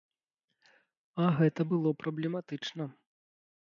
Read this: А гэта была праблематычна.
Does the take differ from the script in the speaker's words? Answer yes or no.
yes